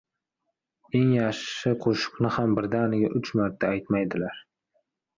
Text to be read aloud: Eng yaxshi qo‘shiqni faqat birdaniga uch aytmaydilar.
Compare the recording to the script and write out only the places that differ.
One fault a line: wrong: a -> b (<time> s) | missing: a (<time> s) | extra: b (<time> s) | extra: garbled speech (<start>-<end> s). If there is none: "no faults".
wrong: faqat -> ham (2.4 s)
extra: marta (3.4 s)